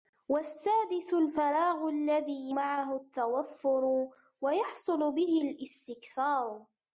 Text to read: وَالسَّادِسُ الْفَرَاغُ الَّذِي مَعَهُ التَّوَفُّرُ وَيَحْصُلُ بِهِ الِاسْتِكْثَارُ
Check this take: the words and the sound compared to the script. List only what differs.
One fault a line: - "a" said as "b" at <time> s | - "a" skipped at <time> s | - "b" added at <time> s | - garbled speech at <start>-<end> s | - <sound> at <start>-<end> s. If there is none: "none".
none